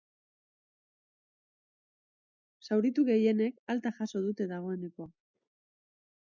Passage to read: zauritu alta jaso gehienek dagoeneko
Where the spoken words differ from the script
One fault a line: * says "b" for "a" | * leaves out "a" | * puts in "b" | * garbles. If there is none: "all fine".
* puts in "gehienek"
* says "dute" for "gehienek"